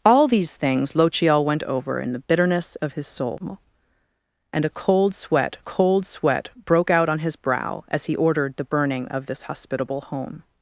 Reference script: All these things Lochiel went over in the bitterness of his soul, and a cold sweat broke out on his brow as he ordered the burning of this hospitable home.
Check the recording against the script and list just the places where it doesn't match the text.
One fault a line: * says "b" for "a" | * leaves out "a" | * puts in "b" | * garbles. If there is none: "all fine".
* puts in "cold sweat"